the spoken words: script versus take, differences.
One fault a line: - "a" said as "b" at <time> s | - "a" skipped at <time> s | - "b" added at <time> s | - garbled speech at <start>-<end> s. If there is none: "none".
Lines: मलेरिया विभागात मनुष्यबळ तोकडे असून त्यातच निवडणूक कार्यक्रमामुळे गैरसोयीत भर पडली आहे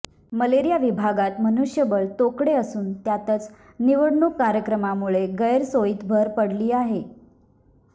none